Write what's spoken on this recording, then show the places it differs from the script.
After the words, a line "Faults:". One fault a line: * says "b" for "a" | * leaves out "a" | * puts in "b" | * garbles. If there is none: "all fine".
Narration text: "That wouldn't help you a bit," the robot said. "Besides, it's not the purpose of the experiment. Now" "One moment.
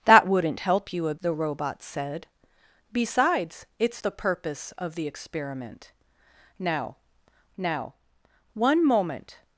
"That wouldn't help you a," the robot said. "Besides, it's the purpose of the experiment. Now now" "One moment.
Faults:
* leaves out "bit"
* leaves out "not"
* puts in "now"